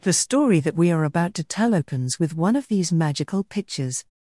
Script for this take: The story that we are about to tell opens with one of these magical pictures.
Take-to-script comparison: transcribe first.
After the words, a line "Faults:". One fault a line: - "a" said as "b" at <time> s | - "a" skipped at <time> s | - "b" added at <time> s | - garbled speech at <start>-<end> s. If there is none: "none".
The story that we are about to tell opens with one of these magical pictures.
Faults:
none